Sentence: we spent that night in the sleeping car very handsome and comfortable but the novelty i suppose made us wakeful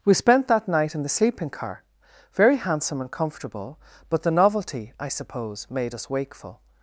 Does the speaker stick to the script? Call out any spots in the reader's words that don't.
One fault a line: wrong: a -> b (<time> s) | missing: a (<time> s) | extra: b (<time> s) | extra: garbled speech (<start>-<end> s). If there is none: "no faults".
no faults